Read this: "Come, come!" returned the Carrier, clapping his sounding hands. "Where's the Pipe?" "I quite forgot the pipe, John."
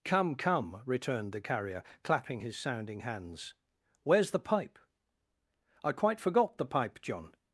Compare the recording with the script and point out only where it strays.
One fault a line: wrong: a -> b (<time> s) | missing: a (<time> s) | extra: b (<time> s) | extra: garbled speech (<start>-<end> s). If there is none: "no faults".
no faults